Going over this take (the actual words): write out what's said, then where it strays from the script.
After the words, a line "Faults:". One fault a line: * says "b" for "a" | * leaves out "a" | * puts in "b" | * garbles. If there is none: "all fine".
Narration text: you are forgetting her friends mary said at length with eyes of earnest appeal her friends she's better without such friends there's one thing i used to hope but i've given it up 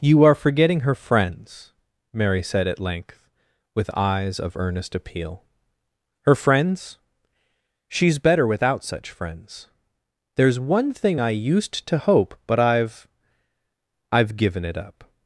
you are forgetting her friends mary said at length with eyes of earnest appeal her friends she's better without such friends there's one thing i used to hope but i've i've given it up
Faults:
* puts in "i've"